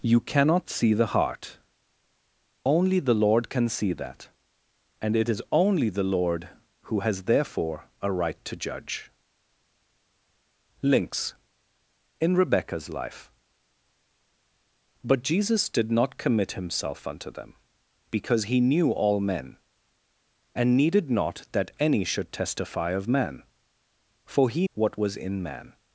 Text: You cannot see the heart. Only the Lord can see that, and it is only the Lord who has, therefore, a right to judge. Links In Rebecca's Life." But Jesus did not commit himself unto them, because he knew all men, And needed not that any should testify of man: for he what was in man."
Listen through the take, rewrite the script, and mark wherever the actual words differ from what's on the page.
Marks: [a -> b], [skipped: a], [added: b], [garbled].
You cannot see the heart. Only the Lord can see that, and it is only the Lord who has, therefore, a right to judge. Links In Rebecca's Life." But Jesus did not commit himself unto them, because he knew all men, And needed not that any should testify of man: for he what was in man."